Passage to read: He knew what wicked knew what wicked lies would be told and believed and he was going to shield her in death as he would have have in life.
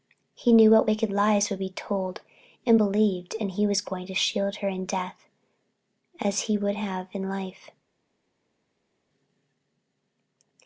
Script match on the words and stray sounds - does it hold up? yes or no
no